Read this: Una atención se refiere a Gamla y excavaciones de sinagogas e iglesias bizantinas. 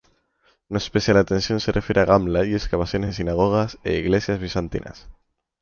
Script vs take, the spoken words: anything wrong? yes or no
yes